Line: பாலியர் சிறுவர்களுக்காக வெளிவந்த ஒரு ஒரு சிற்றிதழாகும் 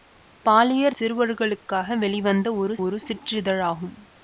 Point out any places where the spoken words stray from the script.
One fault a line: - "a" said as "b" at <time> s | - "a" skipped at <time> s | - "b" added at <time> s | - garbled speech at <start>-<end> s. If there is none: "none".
none